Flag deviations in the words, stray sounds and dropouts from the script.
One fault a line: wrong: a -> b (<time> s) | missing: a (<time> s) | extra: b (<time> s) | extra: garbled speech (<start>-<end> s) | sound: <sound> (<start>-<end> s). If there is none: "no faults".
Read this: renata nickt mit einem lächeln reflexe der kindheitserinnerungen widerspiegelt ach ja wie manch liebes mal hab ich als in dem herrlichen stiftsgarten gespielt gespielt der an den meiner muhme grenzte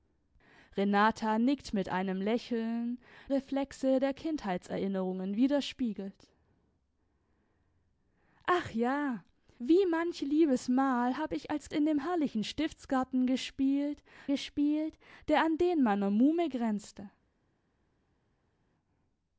no faults